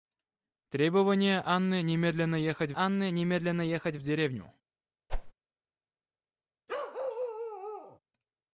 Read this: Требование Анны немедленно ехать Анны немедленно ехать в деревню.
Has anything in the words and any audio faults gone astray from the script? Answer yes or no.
yes